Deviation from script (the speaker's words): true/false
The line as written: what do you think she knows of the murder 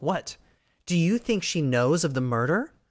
false